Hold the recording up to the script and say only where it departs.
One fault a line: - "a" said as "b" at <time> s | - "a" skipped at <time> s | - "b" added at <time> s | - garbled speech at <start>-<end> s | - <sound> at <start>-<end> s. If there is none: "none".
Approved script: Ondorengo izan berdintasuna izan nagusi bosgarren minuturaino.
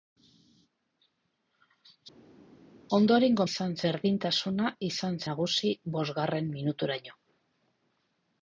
none